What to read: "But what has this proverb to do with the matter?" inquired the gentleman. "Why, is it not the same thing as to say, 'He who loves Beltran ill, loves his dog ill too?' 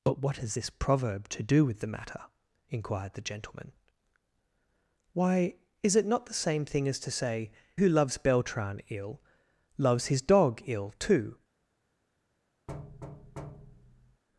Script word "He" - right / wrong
wrong